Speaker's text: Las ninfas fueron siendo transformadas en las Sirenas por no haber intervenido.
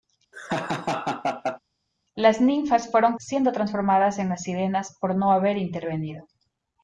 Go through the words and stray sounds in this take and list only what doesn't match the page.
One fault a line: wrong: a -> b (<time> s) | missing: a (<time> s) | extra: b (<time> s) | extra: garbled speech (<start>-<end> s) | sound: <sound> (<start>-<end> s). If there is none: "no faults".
sound: laugh (0.3-1.6 s)